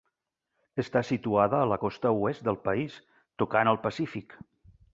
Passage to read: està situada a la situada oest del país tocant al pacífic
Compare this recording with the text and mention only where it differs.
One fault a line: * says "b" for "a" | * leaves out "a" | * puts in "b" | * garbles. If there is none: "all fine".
* says "costa" for "situada"